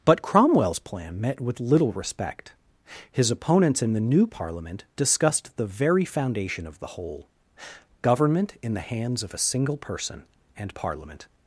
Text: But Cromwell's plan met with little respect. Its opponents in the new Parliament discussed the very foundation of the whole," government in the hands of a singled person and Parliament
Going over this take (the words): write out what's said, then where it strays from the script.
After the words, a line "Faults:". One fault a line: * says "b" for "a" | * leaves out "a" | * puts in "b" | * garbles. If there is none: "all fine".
But Cromwell's plan met with little respect. His opponents in the new Parliament discussed the very foundation of the whole," government in the hands of a single person and Parliament
Faults:
* says "His" for "Its"
* says "single" for "singled"